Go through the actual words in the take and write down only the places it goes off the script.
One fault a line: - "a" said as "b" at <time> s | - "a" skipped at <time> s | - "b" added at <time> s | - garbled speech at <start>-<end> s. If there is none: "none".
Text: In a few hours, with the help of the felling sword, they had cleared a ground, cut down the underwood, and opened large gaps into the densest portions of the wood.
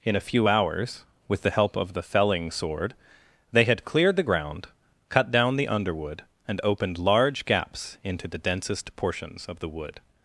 - "a" said as "the" at 4.1 s